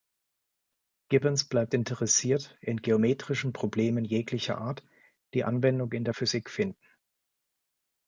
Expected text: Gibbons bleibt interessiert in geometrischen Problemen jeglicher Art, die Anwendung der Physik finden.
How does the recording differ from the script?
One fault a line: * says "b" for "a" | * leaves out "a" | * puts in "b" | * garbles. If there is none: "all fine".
* puts in "in"